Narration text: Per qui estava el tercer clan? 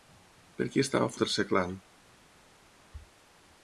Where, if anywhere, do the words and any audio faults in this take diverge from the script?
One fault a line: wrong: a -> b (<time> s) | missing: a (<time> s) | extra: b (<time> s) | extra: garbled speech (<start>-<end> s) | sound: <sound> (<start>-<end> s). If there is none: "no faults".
no faults